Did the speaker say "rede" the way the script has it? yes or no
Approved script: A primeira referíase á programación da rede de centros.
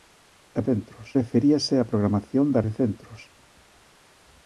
no